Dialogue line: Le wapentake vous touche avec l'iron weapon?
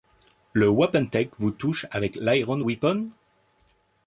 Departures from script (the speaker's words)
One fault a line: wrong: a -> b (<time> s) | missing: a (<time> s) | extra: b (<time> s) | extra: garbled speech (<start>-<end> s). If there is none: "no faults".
no faults